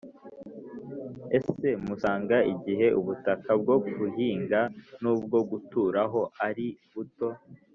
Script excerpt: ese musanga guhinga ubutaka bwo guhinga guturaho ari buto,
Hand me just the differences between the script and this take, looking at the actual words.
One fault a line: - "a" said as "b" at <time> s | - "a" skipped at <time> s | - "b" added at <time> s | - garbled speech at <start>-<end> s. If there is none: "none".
- "guhinga" said as "igihe" at 2.5 s
- "n'ubwo" added at 5.0 s